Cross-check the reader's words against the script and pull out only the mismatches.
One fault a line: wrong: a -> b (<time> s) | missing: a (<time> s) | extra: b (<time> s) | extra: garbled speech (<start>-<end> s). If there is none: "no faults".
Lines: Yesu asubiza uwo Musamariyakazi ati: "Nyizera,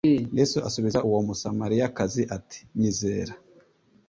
no faults